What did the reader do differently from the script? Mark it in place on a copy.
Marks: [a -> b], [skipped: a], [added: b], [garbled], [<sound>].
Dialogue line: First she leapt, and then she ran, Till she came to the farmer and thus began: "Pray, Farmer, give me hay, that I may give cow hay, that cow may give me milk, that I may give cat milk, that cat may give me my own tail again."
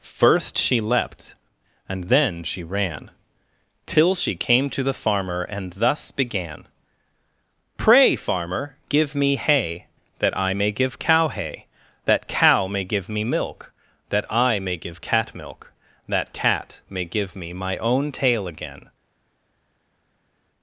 First she leapt, and then she ran, Till she came to the farmer and thus began: "Pray, Farmer, give me hay, that I may give cow hay, that cow may give me milk, that I may give cat milk, that cat may give me my own tail again."